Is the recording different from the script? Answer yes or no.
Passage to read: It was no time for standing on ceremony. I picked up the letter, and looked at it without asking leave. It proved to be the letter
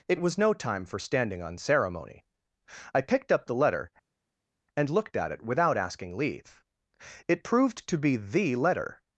no